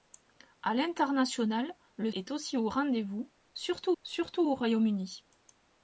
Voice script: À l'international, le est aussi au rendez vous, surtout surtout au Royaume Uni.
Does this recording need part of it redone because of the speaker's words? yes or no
no